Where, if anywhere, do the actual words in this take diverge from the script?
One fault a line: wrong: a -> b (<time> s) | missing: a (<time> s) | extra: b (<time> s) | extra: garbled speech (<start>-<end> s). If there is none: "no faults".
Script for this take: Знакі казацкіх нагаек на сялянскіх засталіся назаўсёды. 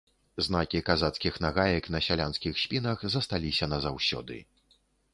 extra: спінах (2.6 s)